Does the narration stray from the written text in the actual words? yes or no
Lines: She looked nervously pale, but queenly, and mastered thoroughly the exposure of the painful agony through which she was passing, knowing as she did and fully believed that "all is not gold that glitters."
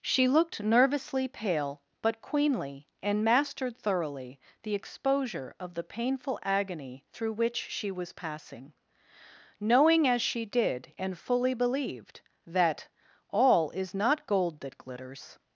no